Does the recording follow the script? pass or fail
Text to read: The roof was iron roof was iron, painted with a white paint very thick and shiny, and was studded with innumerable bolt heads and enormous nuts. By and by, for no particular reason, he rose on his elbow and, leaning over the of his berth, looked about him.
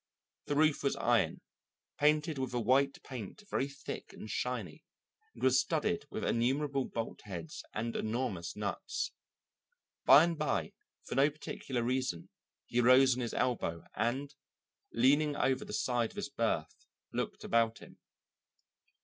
fail